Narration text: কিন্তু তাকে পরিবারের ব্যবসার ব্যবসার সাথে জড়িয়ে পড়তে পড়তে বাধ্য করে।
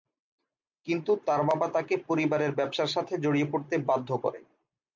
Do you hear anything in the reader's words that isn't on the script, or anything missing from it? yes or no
yes